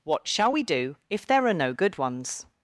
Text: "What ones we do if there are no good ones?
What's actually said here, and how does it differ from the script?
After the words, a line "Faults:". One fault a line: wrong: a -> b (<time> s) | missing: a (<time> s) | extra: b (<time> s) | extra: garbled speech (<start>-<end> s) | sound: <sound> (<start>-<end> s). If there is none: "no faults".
"What shall we do if there are no good ones?
Faults:
wrong: ones -> shall (0.3 s)